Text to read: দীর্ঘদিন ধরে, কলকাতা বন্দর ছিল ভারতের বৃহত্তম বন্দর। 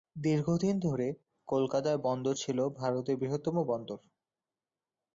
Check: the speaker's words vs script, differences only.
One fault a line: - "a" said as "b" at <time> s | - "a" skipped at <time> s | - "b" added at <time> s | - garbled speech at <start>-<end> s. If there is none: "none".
none